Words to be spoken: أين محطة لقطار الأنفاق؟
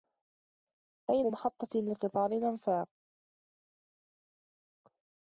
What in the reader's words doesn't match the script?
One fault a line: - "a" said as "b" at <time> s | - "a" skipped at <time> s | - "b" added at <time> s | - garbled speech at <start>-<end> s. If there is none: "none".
none